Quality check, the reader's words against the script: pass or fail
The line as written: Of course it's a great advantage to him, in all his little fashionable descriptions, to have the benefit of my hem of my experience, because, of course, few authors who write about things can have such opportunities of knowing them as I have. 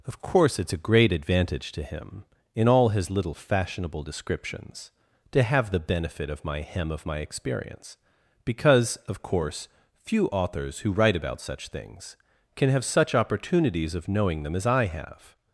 fail